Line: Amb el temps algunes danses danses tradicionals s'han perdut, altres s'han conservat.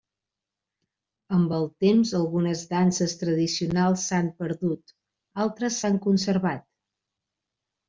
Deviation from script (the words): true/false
true